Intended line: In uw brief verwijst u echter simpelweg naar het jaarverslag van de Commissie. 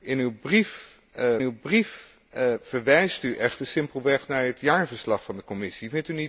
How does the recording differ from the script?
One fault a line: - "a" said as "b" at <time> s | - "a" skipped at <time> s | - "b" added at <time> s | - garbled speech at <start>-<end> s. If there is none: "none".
- "uw brief" added at 1.4 s